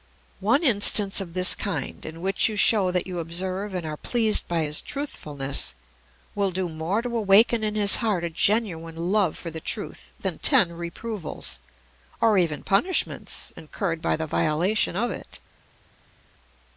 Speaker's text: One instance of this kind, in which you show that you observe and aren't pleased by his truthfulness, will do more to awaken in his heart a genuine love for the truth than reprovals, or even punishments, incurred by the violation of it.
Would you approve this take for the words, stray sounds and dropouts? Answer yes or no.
no